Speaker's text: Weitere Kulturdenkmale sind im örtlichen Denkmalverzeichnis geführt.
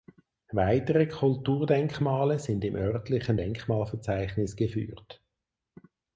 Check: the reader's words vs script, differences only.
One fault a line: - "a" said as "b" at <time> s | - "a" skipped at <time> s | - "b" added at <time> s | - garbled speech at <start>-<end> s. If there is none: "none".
none